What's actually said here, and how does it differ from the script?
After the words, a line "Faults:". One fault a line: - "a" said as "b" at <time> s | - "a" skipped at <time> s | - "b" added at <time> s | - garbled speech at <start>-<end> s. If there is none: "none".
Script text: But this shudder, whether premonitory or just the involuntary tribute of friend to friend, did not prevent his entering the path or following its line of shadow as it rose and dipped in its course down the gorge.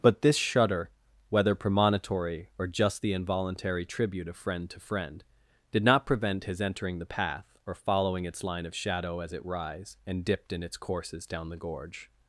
But this shudder, whether premonitory or just the involuntary tribute of friend to friend, did not prevent his entering the path or following its line of shadow as it rise and dipped in its courses down the gorge.
Faults:
- "rose" said as "rise" at 9.4 s
- "course" said as "courses" at 10.8 s